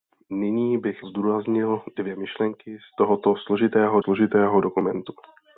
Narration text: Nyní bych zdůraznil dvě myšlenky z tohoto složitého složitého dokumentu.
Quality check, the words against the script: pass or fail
pass